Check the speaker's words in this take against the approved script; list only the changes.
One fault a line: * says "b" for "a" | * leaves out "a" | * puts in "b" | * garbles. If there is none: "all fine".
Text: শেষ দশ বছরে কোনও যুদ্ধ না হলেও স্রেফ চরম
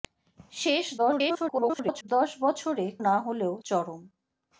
* garbles
* leaves out "কোনও যুদ্ধ"
* leaves out "স্রেফ"